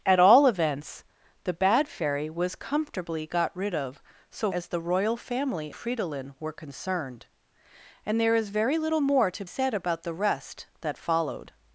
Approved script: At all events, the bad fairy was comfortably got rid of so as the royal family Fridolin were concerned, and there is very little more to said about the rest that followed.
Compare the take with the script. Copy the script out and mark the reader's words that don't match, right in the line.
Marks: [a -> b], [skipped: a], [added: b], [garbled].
At all events, the bad fairy was comfortably got rid of so as the royal family Fridolin were concerned, and there is very little more to said about the rest that followed.